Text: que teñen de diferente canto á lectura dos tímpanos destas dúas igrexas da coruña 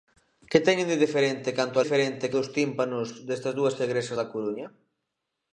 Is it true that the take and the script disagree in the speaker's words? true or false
true